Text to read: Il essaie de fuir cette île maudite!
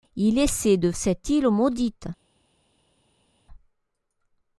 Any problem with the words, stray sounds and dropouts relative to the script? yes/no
yes